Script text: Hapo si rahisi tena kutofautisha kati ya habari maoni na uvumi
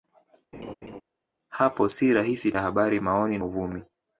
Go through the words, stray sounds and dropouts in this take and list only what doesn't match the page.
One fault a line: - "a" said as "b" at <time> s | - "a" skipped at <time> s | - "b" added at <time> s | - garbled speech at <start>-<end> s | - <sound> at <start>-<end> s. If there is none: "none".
- laugh at 0.5-1.0 s
- "tena kutofautisha kati" skipped at 2.5 s
- "na" skipped at 3.4 s